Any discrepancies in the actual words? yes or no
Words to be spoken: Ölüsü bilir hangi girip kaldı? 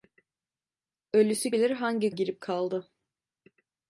no